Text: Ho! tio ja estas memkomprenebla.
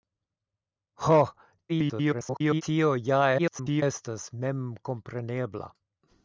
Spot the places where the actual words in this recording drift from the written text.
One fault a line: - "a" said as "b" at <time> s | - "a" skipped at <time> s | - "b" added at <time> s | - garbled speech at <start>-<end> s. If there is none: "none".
- garbled speech at 1.7-2.6 s
- garbled speech at 3.4-3.8 s